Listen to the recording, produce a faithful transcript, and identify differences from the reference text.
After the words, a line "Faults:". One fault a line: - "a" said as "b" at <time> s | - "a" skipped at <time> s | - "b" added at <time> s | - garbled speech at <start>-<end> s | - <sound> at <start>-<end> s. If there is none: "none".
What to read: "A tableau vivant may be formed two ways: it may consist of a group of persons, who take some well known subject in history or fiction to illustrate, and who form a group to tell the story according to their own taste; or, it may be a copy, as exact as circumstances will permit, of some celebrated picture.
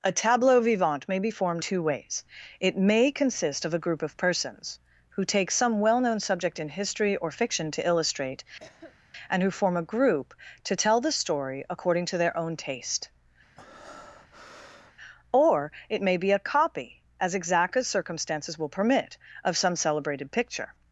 "A tableau vivant may be formed two ways: it may consist of a group of persons, who take some well known subject in history or fiction to illustrate, and who form a group to tell the story according to their own taste; or, it may be a copy, as exact as circumstances will permit, of some celebrated picture.
Faults:
- cough at 8.6-9.0 s
- breath at 13.6-14.9 s